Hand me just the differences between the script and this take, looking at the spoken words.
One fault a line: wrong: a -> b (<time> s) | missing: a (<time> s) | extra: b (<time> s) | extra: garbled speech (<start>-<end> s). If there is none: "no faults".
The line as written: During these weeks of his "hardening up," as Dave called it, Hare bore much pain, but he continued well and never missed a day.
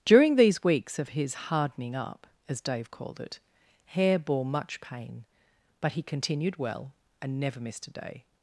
no faults